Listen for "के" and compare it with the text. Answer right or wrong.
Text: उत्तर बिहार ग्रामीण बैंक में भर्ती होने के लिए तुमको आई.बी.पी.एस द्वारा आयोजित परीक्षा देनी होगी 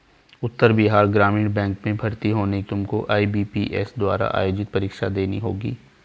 wrong